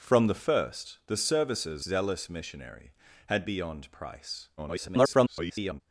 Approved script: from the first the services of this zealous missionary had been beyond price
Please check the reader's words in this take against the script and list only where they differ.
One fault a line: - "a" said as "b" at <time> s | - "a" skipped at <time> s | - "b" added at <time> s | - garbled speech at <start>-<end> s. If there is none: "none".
- "of this" skipped at 1.9 s
- "been" skipped at 3.4 s
- garbled speech at 4.6-5.8 s